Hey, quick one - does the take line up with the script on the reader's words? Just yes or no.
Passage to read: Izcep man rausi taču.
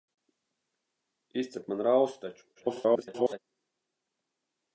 no